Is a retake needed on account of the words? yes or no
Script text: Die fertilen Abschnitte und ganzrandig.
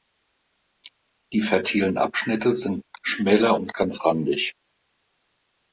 yes